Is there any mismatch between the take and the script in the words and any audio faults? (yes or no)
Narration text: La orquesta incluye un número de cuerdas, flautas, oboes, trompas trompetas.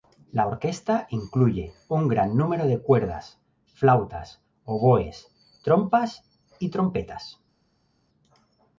yes